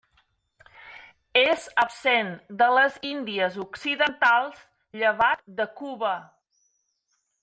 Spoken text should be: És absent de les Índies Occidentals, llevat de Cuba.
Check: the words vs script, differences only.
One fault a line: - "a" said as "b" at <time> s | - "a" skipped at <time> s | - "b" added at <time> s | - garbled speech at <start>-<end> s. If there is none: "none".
none